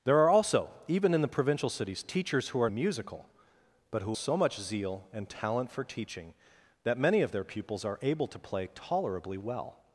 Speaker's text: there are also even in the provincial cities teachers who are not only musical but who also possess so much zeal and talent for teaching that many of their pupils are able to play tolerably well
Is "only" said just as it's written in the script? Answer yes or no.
no